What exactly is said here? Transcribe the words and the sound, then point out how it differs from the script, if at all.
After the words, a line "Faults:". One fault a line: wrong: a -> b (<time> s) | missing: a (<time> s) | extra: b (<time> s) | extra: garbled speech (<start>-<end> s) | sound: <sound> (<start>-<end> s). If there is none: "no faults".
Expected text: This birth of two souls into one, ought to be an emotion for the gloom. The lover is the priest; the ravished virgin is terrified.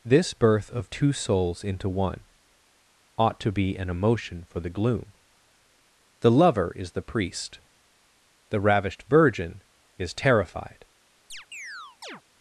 This birth of two souls into one, ought to be an emotion for the gloom. The lover is the priest; the ravished virgin is terrified.
Faults:
sound: chirp (11.3-12.2 s)